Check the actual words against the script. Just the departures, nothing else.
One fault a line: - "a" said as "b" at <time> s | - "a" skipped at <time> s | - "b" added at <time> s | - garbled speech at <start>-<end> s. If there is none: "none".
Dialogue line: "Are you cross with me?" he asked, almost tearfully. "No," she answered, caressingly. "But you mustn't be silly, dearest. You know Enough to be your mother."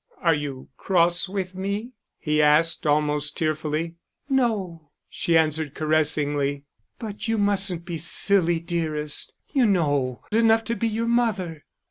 none